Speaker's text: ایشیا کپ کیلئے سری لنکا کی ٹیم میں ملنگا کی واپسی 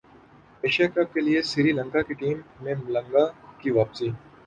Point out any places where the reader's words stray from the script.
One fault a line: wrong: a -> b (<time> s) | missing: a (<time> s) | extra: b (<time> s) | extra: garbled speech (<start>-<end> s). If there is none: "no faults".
no faults